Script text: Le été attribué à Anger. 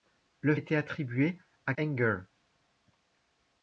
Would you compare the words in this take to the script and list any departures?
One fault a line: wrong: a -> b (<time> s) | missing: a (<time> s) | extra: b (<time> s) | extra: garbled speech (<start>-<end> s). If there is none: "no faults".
no faults